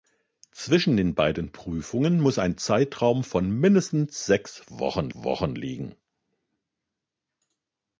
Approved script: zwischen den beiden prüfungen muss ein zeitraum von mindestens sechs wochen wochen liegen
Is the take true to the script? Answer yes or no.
yes